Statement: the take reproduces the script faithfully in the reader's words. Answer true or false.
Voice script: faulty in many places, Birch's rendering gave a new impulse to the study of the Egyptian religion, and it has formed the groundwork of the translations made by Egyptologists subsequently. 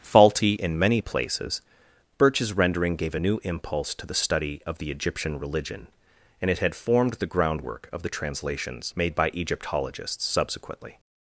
false